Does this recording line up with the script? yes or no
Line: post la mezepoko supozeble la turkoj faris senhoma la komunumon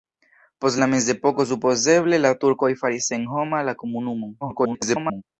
no